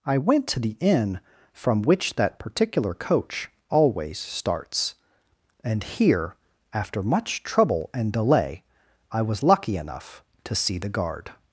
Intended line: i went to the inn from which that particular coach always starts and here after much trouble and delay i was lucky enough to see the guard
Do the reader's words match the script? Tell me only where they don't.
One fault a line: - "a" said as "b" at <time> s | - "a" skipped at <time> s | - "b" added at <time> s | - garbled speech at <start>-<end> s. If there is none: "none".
none